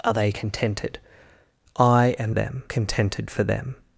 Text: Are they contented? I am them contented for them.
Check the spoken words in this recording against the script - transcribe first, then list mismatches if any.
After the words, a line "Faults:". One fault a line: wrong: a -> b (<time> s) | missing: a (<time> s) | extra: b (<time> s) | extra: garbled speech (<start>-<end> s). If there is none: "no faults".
Are they contented? I am them contented for them.
Faults:
no faults